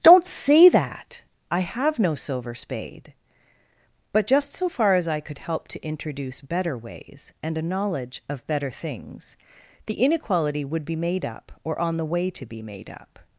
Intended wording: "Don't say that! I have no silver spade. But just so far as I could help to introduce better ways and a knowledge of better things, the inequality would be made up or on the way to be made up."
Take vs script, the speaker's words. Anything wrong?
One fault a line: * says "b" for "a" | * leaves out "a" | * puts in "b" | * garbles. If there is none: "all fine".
all fine